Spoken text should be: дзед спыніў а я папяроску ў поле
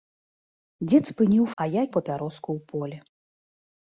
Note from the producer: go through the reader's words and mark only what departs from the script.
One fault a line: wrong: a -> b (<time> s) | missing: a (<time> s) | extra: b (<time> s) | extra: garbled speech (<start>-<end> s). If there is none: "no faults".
no faults